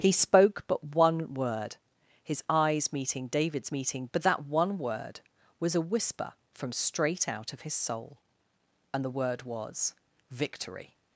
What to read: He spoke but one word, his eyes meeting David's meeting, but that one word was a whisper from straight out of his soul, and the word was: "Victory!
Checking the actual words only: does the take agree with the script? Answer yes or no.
yes